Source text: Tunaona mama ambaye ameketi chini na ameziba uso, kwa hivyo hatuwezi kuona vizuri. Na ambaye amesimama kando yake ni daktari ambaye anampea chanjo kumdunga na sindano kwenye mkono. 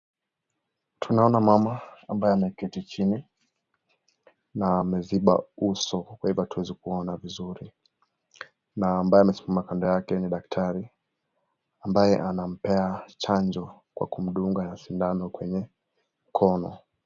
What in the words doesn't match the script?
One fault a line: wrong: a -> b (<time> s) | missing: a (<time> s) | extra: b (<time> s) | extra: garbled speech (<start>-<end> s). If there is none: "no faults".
extra: kwa (13.9 s)